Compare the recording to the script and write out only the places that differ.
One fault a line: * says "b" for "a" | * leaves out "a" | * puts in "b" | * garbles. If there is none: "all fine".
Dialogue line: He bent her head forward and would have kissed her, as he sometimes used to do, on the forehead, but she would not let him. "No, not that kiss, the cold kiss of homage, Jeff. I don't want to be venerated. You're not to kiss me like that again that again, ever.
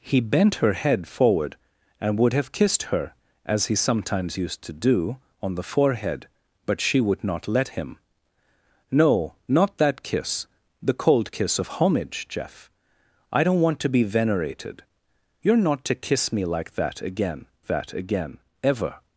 all fine